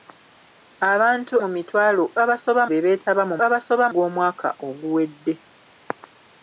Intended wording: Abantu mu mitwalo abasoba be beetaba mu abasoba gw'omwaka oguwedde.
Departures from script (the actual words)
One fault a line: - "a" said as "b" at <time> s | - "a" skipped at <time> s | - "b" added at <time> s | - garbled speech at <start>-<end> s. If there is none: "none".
none